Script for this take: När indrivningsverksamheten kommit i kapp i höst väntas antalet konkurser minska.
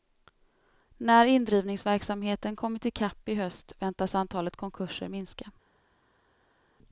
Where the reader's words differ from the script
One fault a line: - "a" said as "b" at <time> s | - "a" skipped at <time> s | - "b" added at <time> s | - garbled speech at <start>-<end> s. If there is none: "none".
none